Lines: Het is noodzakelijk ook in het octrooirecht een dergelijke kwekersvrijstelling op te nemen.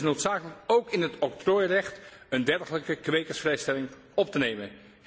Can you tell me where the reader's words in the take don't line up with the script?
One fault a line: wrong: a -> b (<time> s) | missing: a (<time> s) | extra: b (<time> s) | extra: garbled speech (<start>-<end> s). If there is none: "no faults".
no faults